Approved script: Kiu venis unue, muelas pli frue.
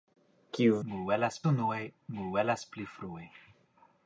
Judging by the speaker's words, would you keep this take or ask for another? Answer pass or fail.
fail